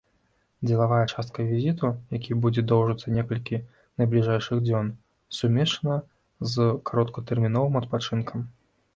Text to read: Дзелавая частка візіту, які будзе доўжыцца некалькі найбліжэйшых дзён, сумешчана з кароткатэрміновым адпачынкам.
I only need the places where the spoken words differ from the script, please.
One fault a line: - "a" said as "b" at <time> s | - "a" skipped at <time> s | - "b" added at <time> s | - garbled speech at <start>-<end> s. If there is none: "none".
none